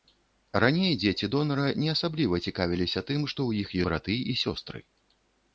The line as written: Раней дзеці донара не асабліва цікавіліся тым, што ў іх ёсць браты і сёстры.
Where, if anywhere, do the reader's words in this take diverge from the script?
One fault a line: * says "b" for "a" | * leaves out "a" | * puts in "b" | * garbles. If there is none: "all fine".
* leaves out "ёсць"